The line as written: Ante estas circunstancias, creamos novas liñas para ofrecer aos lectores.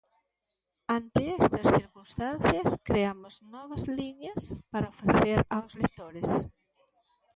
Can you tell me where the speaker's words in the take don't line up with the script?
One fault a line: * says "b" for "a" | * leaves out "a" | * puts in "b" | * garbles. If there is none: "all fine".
all fine